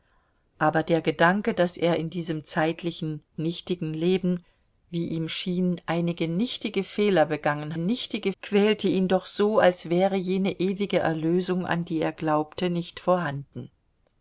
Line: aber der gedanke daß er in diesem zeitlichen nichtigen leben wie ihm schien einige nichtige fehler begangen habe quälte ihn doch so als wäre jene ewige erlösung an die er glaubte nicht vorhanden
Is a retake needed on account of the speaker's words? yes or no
yes